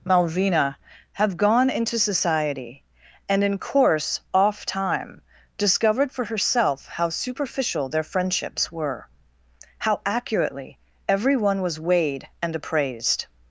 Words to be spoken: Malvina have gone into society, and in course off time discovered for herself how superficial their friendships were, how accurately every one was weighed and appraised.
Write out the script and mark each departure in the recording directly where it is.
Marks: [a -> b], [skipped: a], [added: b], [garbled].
Malvina have gone into society, and in course off time discovered for herself how superficial their friendships were, how accurately every one was weighed and appraised.